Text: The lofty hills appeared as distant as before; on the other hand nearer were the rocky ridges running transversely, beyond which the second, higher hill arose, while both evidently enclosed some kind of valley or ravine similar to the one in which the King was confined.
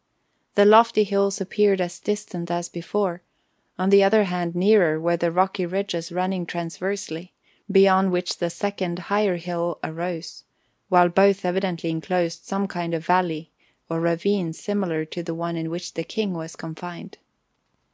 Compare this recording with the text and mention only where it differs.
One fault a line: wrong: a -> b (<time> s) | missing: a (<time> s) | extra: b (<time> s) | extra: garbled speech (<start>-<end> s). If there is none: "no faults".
no faults